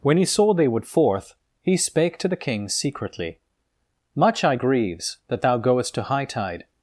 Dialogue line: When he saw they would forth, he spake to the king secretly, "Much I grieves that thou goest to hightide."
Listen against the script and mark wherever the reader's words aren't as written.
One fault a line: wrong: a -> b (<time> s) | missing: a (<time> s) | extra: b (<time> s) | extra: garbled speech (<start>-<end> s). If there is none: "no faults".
no faults